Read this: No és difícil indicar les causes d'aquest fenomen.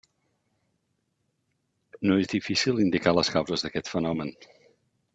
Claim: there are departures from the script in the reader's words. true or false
false